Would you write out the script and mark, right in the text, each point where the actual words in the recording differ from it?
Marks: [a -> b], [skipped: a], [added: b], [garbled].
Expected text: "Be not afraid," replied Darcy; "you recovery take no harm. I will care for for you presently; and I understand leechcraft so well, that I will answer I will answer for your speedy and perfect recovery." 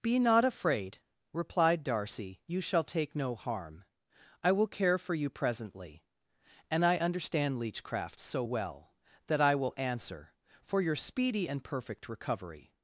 "Be not afraid," replied Darcy; "you [recovery -> shall] take no harm. I will care for [skipped: for] you presently; and I understand leechcraft so well, that I will answer [skipped: I will answer] for your speedy and perfect recovery."